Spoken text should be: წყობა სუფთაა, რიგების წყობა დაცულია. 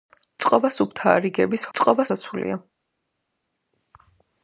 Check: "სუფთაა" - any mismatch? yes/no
no